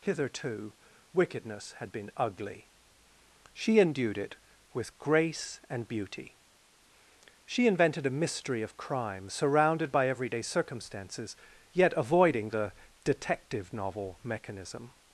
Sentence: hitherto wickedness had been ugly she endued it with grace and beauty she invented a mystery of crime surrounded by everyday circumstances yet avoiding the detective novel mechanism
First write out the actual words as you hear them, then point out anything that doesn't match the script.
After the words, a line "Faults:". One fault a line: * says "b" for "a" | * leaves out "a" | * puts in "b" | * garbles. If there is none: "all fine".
hitherto wickedness had been ugly she endued it with grace and beauty she invented a mystery of crime surrounded by everyday circumstances yet avoiding the detective novel mechanism
Faults:
all fine